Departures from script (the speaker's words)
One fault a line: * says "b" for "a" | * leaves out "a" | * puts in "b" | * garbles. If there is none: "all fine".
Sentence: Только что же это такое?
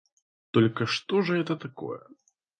all fine